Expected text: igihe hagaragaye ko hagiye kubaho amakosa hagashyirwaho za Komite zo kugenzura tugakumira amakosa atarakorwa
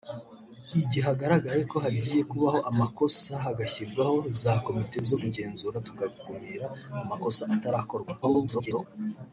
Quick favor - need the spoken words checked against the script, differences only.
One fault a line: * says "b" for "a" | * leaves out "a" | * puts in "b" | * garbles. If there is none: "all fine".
* garbles